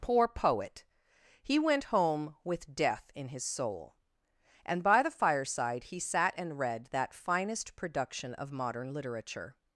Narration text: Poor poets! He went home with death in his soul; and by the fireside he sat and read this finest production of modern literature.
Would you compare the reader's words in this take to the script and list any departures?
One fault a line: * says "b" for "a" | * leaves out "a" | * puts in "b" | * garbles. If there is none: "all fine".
* says "poet" for "poets"
* says "that" for "this"